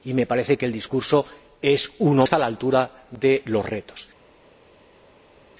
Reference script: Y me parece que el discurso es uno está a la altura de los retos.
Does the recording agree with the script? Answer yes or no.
yes